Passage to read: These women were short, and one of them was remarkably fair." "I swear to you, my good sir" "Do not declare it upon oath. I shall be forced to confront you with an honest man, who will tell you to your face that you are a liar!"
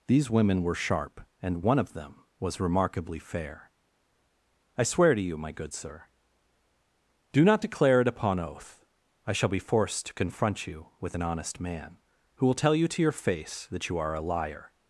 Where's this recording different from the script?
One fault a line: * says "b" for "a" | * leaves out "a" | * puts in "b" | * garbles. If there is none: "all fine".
* says "sharp" for "short"